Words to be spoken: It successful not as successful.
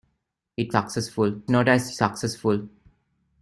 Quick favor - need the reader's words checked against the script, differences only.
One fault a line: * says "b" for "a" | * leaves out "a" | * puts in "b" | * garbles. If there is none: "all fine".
all fine